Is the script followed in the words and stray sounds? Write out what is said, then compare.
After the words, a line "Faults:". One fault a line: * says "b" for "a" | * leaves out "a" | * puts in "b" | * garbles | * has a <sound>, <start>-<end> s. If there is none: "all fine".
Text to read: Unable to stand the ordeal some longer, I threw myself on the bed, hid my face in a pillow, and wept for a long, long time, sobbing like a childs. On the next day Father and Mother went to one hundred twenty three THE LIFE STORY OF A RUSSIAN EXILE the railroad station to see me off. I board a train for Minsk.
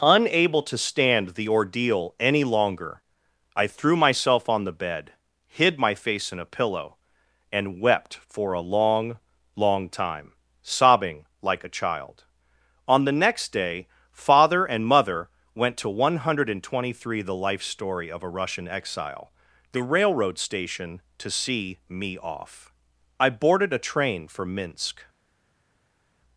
Unable to stand the ordeal any longer, I threw myself on the bed, hid my face in a pillow, and wept for a long, long time, sobbing like a child. On the next day Father and Mother went to one hundred twenty three THE LIFE STORY OF A RUSSIAN EXILE the railroad station to see me off. I boarded a train for Minsk.
Faults:
* says "any" for "some"
* says "child" for "childs"
* says "boarded" for "board"